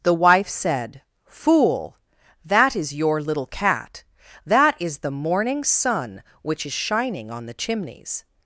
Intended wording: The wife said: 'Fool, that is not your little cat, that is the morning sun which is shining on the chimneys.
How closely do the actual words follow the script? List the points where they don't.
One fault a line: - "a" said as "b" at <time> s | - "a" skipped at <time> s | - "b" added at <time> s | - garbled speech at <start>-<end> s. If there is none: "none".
- "not" skipped at 2.9 s